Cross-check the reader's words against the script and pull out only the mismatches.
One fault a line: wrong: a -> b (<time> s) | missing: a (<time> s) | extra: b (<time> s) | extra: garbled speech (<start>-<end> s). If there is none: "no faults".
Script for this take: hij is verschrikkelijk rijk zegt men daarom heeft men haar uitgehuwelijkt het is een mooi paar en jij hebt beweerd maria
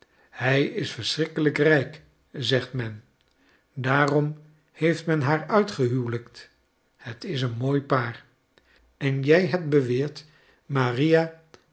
no faults